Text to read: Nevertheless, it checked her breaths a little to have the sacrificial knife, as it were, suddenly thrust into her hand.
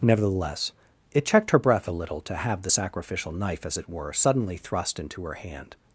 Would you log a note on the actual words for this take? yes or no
yes